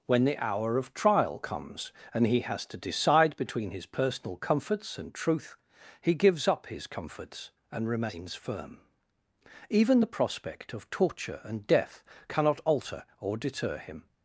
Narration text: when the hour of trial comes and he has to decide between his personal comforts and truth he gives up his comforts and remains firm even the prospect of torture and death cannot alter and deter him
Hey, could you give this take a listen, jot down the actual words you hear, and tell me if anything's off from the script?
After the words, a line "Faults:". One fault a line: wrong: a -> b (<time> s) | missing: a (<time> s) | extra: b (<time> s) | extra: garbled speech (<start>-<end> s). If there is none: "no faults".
when the hour of trial comes and he has to decide between his personal comforts and truth he gives up his comforts and remains firm even the prospect of torture and death cannot alter or deter him
Faults:
wrong: and -> or (13.2 s)